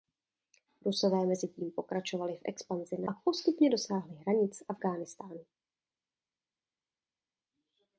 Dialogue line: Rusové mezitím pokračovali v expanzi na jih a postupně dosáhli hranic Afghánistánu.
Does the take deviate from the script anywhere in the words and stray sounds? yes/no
yes